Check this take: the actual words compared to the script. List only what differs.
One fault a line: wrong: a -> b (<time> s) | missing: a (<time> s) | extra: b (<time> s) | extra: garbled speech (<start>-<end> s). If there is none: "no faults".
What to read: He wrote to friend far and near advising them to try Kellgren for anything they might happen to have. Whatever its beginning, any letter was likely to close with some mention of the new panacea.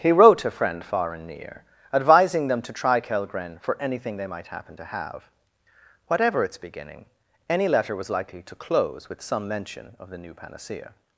no faults